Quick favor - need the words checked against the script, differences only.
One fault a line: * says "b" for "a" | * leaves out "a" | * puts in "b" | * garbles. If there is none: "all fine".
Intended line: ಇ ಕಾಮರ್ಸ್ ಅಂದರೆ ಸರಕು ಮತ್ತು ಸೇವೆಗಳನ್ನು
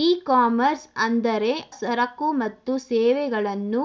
all fine